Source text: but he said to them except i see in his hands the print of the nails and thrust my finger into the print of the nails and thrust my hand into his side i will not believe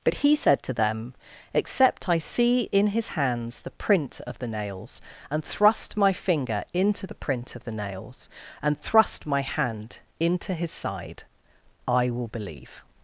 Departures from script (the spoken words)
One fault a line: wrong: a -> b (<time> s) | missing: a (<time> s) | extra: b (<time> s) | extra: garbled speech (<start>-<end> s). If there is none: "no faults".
missing: not (12.3 s)